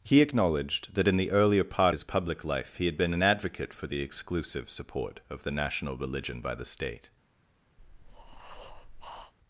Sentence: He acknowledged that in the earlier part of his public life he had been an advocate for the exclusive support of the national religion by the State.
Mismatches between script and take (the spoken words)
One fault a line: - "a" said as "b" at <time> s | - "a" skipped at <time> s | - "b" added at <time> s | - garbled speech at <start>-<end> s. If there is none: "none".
- "of" skipped at 1.9 s